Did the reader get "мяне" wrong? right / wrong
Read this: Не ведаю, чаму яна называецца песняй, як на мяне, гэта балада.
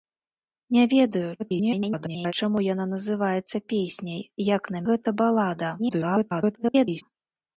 wrong